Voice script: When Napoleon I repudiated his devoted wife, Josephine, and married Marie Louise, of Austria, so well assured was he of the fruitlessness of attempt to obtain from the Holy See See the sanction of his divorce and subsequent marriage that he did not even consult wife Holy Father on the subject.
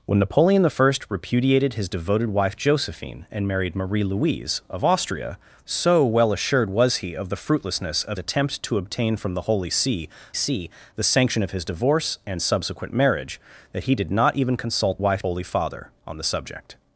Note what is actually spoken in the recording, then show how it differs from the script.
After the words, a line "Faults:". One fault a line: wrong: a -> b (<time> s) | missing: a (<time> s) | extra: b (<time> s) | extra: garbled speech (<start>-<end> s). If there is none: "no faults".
When Napoleon I repudiated his devoted wife, Josephine, and married Marie Louise, of Austria, so well assured was he of the fruitlessness of attempt to obtain from the Holy See See the sanction of his divorce and subsequent marriage that he did not even consult wife Holy Father on the subject.
Faults:
no faults